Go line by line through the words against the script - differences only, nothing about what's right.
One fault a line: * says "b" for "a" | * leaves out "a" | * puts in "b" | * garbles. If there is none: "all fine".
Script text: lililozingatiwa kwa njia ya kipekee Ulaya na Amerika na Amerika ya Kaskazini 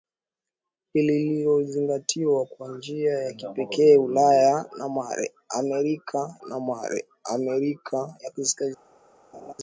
all fine